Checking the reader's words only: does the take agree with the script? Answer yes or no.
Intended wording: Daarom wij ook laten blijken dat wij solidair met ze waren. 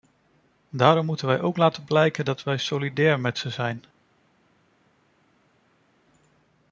no